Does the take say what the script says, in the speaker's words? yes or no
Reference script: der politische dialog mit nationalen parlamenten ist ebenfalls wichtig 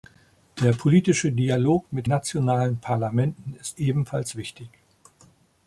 yes